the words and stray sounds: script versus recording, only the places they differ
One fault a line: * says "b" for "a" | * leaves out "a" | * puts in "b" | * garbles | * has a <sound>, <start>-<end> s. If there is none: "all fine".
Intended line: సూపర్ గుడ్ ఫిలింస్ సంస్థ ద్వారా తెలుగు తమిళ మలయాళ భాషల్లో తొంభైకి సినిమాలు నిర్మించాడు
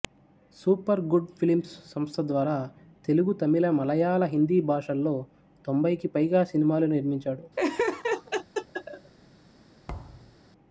* puts in "హిందీ"
* puts in "పైగా"
* has a laugh, 7.6-9.1 s
* has a thud, 9.9-10.4 s